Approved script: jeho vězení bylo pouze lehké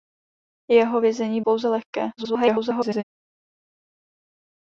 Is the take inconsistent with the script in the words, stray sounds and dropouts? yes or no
yes